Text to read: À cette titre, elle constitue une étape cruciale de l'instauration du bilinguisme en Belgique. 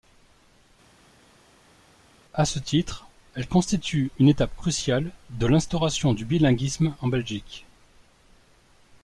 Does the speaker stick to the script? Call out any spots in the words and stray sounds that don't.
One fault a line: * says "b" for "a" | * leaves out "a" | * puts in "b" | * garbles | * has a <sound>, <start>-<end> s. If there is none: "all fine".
* says "ce" for "cette"